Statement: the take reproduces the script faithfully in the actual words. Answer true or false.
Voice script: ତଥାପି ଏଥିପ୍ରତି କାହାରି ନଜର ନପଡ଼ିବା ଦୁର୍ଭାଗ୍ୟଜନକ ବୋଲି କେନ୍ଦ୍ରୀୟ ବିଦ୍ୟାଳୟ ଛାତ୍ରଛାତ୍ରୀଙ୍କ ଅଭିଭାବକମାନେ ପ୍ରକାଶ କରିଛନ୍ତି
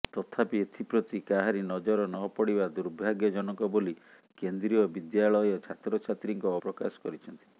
false